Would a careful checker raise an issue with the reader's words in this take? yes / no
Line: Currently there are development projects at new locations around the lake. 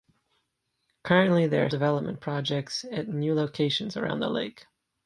no